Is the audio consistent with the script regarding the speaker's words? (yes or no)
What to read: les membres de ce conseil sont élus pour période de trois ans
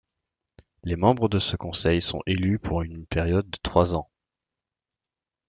no